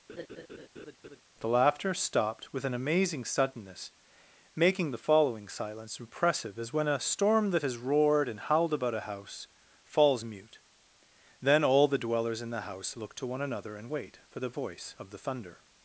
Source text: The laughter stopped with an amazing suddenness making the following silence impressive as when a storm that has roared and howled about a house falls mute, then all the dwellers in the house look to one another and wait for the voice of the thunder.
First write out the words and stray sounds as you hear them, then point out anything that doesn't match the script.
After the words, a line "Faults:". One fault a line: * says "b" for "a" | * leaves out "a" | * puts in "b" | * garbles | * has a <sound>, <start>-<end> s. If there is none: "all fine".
The laughter stopped with an amazing suddenness making the following silence impressive as when a storm that has roared and howled about a house falls mute, then all the dwellers in the house look to one another and wait for the voice of the thunder.
Faults:
* has a laugh, 0.1-1.2 s